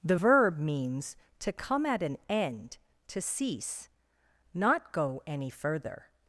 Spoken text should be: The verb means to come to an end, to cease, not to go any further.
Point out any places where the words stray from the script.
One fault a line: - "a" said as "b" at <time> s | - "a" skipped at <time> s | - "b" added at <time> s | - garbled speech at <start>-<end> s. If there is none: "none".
- "to" said as "at" at 1.9 s
- "to" skipped at 4.9 s